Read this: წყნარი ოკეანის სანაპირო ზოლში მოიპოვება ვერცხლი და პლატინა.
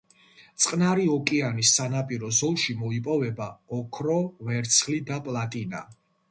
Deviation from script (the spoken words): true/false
true